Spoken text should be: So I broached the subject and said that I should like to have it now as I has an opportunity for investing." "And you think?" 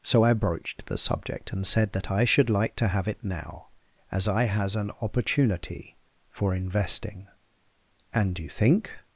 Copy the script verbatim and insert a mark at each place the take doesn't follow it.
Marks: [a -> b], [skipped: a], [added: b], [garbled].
So I broached the subject and said that I should like to have it now as I has an opportunity for investing." "And you think?"